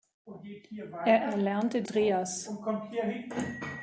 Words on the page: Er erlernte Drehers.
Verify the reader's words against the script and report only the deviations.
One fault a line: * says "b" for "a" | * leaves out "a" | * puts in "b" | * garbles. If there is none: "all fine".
all fine